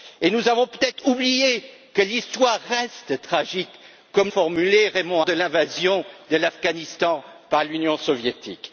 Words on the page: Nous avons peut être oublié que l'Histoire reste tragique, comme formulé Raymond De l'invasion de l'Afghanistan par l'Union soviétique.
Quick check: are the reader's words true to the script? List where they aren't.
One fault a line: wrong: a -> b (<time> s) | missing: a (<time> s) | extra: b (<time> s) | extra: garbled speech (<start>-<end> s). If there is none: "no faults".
no faults